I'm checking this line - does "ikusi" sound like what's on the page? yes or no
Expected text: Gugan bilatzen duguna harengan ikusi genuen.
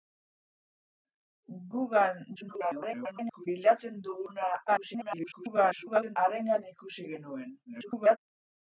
yes